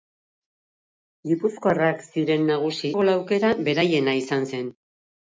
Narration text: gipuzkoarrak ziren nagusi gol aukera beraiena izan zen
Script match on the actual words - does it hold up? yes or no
yes